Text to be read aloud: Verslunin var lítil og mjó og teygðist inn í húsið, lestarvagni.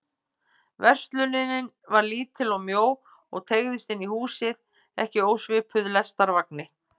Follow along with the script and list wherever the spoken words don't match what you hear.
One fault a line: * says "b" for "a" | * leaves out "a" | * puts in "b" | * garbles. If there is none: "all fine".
* puts in "ekki ósvipuð"